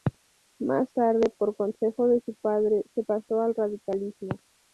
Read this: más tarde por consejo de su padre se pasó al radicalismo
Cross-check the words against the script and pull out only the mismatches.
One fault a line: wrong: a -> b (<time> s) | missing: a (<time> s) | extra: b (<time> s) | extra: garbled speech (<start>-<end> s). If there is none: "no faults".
no faults